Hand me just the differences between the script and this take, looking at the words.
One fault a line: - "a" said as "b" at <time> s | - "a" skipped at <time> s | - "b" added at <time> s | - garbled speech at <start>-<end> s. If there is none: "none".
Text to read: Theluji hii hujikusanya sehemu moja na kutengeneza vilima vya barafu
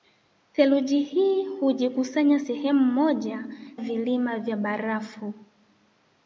- "na kutengeneza" skipped at 3.5 s